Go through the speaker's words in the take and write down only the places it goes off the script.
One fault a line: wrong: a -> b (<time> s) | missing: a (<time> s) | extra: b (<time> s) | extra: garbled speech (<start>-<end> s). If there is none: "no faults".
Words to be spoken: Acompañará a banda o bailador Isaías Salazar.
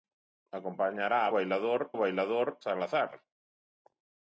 wrong: banda -> bailador (1.4 s)
missing: Isaías (2.6 s)